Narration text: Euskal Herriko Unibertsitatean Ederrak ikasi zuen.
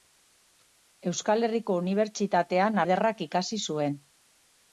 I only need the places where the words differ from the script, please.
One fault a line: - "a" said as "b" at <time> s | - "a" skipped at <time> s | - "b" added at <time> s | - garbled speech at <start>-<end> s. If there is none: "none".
none